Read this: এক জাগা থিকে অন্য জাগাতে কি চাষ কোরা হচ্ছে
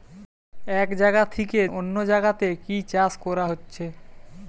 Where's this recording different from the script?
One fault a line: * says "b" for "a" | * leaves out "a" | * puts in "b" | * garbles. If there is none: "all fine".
all fine